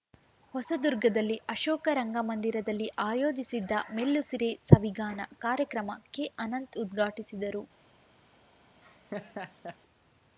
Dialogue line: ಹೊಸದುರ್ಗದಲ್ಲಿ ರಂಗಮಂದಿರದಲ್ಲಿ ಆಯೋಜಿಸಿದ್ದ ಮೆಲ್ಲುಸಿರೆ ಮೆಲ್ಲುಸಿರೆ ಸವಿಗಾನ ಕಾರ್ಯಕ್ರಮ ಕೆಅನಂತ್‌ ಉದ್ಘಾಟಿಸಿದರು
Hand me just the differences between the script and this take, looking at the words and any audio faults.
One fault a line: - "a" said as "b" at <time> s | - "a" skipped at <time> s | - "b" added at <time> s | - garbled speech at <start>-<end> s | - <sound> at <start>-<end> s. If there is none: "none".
- "ಅಶೋಕ" added at 1.5 s
- "ಮೆಲ್ಲುಸಿರೆ" skipped at 4.5 s
- laugh at 8.8-9.8 s